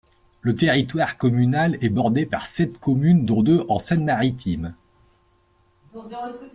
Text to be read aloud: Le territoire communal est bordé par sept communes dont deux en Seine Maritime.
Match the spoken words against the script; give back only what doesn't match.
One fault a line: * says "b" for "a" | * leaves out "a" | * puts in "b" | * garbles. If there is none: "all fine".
all fine